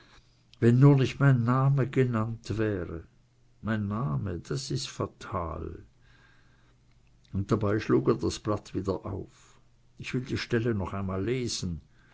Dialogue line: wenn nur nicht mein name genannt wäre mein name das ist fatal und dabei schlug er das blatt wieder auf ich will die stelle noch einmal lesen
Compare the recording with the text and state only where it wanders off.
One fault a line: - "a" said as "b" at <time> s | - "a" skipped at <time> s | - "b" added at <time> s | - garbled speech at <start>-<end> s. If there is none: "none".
none